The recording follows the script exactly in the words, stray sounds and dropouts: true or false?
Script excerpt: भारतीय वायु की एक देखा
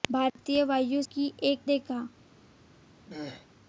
false